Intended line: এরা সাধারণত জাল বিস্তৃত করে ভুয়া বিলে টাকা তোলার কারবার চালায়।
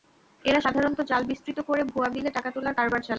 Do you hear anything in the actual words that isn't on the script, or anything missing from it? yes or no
no